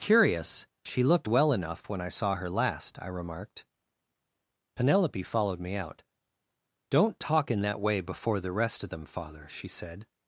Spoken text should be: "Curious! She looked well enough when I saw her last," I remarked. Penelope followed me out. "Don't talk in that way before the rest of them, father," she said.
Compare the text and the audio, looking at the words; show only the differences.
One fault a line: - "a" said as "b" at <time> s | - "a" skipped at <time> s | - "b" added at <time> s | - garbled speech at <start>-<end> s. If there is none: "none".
none